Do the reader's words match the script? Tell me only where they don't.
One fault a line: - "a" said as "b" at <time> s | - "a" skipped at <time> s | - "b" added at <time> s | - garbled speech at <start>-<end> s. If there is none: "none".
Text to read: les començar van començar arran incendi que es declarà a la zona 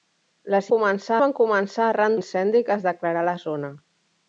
none